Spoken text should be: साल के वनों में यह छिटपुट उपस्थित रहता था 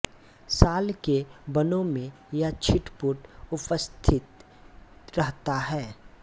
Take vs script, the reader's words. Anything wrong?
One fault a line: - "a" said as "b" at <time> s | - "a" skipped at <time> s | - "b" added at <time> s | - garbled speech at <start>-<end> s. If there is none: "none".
- "था" said as "है" at 5.6 s